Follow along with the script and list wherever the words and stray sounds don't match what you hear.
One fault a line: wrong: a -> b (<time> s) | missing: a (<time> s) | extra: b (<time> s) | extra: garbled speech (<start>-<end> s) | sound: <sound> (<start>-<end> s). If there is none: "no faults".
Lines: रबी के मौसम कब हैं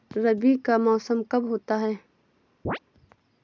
wrong: के -> का (0.6 s)
extra: होता (1.4 s)
sound: chirp (2.6-2.8 s)